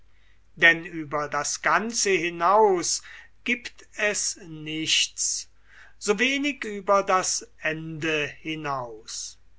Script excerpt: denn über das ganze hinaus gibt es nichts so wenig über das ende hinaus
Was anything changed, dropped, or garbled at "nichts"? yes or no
no